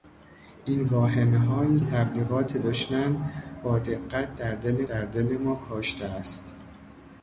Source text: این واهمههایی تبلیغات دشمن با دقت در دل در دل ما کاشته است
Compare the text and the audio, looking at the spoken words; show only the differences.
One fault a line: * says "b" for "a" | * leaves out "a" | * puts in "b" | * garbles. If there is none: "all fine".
all fine